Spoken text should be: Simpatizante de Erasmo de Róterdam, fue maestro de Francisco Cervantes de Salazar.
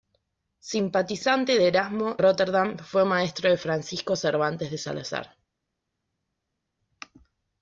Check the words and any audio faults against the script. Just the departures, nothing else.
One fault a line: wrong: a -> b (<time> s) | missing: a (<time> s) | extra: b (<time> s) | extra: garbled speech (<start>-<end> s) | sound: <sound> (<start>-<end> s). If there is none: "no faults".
missing: de (2.2 s)